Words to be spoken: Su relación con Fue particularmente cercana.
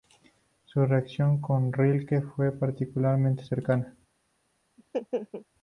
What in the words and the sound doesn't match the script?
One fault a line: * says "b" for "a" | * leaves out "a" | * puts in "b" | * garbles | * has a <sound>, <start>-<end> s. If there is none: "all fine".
* puts in "Rilke"
* has a laugh, 4.8-5.5 s